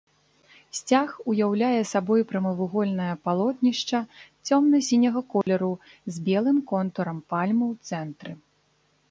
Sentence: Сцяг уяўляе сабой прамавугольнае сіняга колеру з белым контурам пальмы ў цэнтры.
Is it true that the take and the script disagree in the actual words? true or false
true